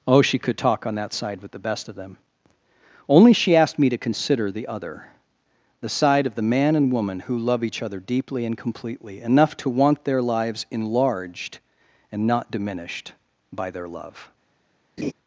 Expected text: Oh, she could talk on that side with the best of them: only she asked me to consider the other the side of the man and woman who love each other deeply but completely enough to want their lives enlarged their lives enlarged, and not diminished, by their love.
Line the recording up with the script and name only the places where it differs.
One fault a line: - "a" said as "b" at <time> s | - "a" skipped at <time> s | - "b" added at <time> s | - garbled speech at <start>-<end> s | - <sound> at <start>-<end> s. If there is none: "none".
- "but" said as "and" at 8.4 s
- "their lives enlarged" skipped at 11.6 s
- laugh at 15.0-15.1 s